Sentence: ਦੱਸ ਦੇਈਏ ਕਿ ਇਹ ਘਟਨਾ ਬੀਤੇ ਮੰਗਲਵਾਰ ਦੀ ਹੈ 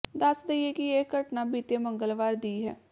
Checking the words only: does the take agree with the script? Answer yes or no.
yes